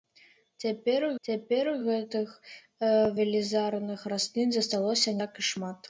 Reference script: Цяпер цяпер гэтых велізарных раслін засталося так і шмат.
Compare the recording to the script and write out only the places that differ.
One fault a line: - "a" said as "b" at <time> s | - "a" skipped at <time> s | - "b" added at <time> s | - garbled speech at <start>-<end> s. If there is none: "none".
none